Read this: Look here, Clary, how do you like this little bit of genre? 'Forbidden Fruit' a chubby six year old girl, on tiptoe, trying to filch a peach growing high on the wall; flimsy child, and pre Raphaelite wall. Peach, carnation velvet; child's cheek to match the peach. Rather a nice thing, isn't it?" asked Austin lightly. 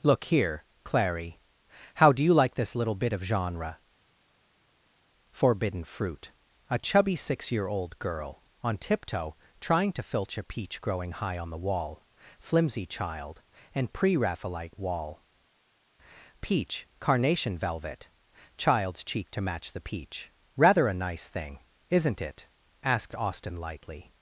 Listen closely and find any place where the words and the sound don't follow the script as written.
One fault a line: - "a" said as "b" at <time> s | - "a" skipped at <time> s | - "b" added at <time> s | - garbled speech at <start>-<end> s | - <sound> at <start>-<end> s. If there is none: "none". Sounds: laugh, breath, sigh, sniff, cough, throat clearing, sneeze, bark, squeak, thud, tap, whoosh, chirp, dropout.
none